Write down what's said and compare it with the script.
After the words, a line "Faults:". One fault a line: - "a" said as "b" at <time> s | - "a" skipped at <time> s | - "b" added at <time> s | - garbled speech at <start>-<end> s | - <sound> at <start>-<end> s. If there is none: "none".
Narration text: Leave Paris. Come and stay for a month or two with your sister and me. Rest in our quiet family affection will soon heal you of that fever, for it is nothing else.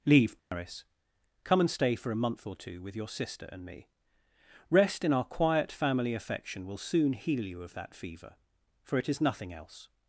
Leave Paris. Come and stay for a month or two with your sister and me. Rest in our quiet family affection will soon heal you of that fever, for it is nothing else.
Faults:
- dropout at 0.4-0.5 s